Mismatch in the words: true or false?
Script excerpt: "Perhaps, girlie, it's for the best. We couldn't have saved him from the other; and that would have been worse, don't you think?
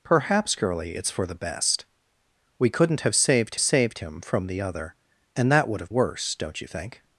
true